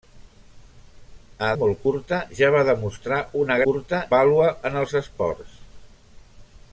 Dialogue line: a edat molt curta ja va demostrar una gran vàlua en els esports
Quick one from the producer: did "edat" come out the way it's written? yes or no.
no